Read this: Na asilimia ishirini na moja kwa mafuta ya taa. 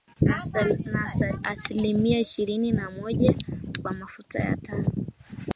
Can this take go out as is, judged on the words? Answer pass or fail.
pass